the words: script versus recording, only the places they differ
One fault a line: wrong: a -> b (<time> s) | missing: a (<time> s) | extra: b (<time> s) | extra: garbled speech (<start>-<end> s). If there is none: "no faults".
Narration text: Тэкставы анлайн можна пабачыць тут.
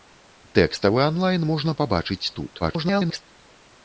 extra: garbled speech (2.6-3.2 s)